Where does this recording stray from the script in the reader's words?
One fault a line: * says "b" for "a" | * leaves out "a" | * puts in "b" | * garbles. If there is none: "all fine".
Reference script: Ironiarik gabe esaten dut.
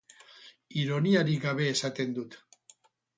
all fine